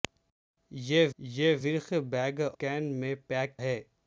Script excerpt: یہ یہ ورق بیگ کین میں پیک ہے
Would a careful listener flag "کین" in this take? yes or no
no